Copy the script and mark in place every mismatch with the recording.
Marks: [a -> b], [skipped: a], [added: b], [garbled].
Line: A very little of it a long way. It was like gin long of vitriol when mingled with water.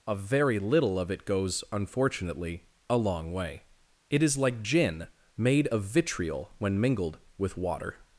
A very little of it [added: goes unfortunately] a long way. It [was -> is] like gin [long -> made] of vitriol when mingled with water.